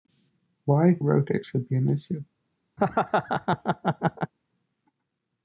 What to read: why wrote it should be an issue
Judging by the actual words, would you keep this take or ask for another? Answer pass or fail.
pass